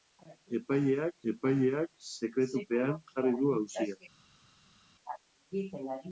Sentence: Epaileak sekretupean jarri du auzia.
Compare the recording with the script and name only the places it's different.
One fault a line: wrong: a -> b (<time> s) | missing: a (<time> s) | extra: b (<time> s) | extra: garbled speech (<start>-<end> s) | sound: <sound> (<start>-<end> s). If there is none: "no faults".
extra: epaileak (1.3 s)